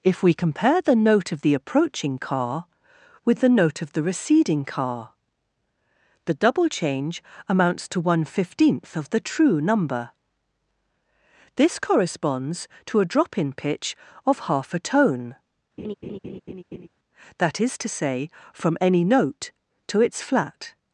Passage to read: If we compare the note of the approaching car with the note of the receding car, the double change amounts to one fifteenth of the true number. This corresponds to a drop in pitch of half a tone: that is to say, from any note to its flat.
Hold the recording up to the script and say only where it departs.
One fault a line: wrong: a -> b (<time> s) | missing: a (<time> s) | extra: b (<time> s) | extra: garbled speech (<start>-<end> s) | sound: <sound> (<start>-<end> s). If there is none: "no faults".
sound: laugh (15.8-16.9 s)